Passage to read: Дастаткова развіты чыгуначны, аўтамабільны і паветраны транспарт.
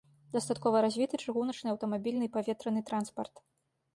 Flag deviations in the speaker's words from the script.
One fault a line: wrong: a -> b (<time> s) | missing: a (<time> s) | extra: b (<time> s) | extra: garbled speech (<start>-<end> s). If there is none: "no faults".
no faults